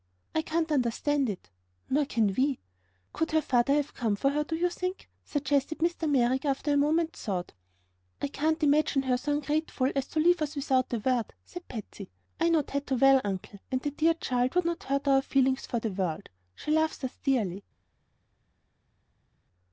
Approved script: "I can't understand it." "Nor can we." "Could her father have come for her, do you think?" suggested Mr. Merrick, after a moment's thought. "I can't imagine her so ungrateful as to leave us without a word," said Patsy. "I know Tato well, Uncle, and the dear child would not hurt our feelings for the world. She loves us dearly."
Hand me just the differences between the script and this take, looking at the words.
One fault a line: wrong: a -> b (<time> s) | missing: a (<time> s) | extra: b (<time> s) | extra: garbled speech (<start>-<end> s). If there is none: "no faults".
no faults